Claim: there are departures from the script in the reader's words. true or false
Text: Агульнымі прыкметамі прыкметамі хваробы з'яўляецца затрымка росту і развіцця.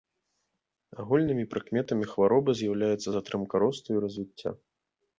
true